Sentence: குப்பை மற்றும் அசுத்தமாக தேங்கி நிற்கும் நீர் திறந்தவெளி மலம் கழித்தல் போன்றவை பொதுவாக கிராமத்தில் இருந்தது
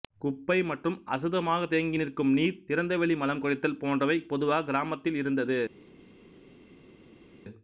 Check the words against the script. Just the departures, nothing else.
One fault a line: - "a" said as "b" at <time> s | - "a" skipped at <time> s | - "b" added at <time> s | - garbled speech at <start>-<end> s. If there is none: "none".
none